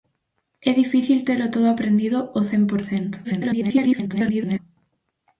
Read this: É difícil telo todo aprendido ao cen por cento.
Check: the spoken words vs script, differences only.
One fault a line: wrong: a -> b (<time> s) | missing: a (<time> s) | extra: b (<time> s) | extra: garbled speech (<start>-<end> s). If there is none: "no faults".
extra: garbled speech (3.2-4.6 s)